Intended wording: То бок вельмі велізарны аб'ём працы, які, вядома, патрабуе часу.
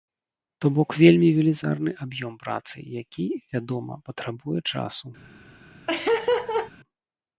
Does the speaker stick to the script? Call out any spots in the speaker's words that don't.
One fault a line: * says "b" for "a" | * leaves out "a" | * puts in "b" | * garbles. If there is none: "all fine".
all fine